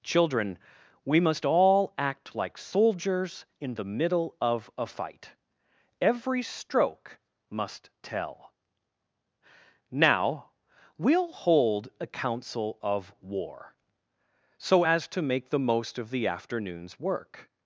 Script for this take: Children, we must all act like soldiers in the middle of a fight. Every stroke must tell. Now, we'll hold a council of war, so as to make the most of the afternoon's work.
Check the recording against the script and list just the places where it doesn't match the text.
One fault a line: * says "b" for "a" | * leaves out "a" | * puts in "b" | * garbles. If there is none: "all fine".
all fine